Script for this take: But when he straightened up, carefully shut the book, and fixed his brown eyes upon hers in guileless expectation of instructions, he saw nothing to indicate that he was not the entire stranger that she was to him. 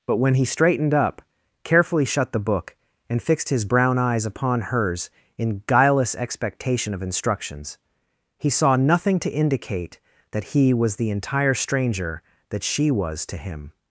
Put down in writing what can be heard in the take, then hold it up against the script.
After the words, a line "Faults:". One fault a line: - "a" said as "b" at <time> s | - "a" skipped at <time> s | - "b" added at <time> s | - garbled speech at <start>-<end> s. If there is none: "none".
But when he straightened up, carefully shut the book, and fixed his brown eyes upon hers in guileless expectation of instructions, he saw nothing to indicate that he was the entire stranger that she was to him.
Faults:
- "not" skipped at 10.9 s